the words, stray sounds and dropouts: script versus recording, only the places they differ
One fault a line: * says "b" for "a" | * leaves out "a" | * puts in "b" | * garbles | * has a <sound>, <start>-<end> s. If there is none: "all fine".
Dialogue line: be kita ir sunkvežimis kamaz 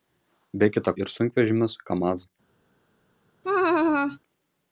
* has a laugh, 3.4-4.2 s